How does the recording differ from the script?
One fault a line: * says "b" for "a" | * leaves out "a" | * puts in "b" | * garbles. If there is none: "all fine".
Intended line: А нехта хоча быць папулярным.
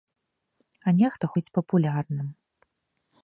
* leaves out "хоча"